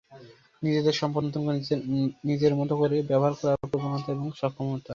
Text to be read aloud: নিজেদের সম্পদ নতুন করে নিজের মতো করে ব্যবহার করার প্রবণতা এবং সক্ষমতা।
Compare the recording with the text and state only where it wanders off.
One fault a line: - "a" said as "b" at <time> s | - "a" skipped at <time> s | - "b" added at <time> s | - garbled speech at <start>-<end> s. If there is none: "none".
none